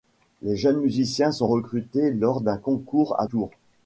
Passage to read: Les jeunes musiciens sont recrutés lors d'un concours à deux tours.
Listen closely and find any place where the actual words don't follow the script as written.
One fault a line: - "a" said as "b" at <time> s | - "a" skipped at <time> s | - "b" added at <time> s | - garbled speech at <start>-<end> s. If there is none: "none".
- "deux" skipped at 3.3 s